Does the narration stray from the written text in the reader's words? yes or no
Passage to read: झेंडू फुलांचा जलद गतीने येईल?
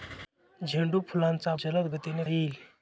no